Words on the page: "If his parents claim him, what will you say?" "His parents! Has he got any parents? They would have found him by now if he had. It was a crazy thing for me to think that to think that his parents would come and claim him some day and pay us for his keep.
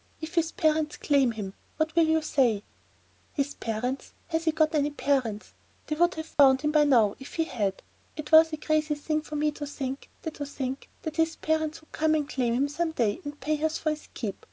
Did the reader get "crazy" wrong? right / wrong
right